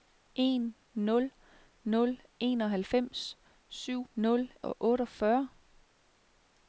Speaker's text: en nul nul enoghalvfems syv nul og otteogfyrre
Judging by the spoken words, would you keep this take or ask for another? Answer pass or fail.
pass